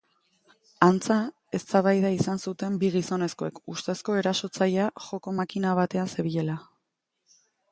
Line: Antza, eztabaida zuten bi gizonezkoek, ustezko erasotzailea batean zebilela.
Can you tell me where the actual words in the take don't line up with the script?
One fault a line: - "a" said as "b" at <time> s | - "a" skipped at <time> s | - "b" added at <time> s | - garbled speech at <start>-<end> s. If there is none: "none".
- "izan" added at 2.1 s
- "joko makina" added at 5.1 s